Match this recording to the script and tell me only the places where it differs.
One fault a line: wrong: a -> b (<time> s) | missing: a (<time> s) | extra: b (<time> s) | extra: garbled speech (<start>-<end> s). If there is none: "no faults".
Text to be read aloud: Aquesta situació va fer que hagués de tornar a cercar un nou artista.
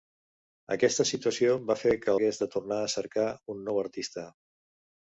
no faults